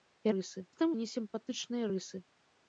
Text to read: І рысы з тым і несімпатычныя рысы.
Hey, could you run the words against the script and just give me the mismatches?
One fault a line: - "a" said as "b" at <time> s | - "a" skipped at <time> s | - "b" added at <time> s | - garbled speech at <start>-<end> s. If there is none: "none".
none